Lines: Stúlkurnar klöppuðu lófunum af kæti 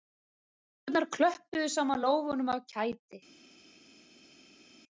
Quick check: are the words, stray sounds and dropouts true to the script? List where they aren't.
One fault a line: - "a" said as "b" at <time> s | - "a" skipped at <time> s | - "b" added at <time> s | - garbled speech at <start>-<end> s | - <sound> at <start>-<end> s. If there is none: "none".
- "saman" added at 1.8 s